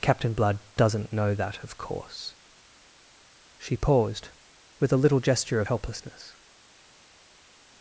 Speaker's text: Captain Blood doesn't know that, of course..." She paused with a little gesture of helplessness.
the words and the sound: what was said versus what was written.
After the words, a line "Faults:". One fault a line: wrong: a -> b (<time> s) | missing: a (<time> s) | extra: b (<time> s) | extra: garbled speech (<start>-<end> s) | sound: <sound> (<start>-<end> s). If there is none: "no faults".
Captain Blood doesn't know that, of course..." She paused with a little gesture of helplessness.
Faults:
no faults